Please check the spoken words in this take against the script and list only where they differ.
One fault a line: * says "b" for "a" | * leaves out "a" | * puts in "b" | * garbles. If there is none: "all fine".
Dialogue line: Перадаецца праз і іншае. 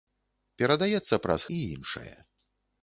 all fine